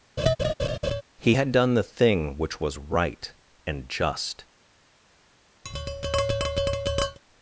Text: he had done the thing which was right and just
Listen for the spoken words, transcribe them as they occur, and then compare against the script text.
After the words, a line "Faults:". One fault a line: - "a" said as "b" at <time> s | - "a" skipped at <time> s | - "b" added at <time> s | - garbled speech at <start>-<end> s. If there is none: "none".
he had done the thing which was right and just
Faults:
none